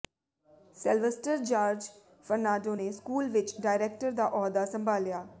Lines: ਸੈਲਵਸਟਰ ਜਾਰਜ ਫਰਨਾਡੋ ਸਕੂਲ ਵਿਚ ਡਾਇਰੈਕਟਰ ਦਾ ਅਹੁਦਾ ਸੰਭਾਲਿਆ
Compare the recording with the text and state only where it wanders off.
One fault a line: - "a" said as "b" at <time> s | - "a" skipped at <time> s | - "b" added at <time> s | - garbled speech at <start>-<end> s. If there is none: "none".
- "ਨੇ" added at 2.7 s